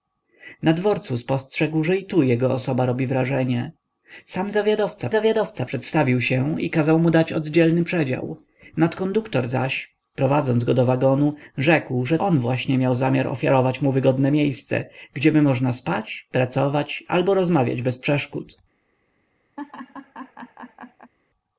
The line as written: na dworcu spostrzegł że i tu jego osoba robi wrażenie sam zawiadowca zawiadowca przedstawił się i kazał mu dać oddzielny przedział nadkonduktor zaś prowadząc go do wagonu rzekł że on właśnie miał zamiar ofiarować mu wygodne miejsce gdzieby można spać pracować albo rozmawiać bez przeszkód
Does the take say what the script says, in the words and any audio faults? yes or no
no